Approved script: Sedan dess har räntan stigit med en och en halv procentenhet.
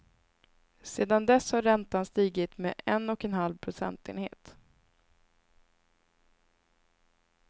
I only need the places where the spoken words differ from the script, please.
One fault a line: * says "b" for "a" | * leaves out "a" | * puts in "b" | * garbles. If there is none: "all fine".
all fine